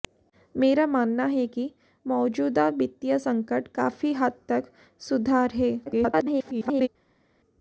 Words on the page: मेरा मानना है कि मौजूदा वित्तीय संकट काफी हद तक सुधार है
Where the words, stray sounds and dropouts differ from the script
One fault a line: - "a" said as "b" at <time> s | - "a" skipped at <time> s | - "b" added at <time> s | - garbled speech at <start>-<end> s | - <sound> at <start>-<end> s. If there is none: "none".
- garbled speech at 5.9-6.9 s